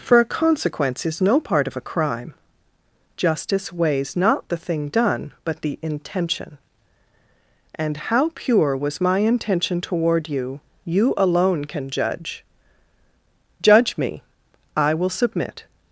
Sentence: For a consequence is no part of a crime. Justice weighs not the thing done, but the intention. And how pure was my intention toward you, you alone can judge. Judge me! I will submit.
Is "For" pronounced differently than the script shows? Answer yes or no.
no